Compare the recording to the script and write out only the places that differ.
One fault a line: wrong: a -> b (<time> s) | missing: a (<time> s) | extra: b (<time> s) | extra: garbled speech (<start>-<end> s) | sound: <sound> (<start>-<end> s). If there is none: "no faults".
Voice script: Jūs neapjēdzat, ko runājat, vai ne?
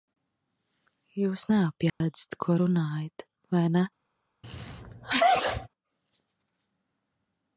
sound: dropout (1.9-2.0 s)
sound: sneeze (4.4-5.7 s)